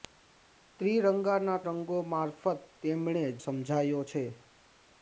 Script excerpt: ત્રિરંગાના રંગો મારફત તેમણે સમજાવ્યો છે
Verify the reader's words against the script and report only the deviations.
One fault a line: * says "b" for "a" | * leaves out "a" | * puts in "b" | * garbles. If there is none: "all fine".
all fine